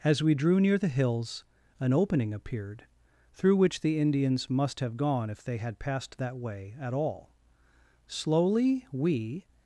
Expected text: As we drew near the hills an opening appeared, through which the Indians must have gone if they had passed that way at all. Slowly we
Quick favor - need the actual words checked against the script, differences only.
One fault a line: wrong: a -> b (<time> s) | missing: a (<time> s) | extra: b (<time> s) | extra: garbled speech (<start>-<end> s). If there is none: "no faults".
no faults